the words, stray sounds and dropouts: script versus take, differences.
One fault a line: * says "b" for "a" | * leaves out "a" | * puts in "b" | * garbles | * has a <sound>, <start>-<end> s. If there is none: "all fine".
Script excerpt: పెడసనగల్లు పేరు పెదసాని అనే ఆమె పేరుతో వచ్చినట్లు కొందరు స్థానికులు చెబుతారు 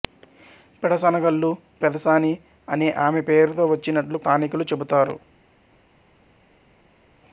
* leaves out "పేరు"
* leaves out "కొందరు"